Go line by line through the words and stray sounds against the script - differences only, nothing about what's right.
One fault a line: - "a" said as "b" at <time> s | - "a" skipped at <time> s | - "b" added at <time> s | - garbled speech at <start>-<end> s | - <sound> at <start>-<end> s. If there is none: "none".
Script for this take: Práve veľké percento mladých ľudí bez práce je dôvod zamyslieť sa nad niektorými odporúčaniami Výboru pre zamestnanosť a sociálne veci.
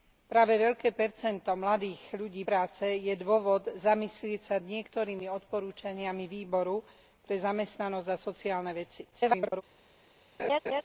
- "bez" skipped at 2.4 s
- "nad" skipped at 4.6 s
- garbled speech at 9.1-9.6 s
- laugh at 10.4-10.8 s